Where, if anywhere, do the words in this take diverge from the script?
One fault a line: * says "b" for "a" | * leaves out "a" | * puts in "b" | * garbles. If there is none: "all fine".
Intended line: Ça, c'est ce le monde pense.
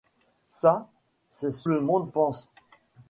all fine